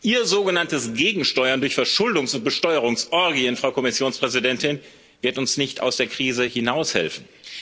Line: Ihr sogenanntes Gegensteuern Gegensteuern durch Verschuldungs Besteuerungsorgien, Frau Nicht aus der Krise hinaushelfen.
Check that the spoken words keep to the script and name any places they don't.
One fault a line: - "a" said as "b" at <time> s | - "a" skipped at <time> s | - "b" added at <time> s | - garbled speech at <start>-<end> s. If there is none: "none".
- "Gegensteuern" skipped at 1.6 s
- "und" added at 2.3 s
- "Kommissionspräsidentin wird uns" added at 3.7 s